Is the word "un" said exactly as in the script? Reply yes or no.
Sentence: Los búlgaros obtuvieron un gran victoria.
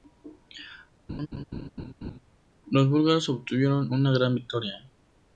no